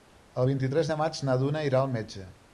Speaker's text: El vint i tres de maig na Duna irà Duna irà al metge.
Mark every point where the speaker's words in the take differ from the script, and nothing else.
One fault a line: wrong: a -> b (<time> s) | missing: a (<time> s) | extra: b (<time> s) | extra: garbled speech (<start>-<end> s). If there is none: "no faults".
missing: Duna irà (1.8 s)